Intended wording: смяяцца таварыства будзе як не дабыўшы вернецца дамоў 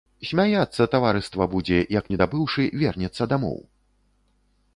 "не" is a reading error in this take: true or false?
false